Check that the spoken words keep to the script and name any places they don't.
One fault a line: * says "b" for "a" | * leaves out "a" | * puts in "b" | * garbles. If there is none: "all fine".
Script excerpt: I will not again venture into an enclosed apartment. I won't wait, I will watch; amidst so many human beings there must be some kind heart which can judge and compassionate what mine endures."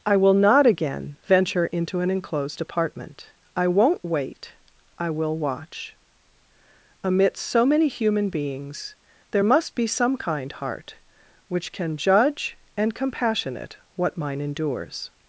all fine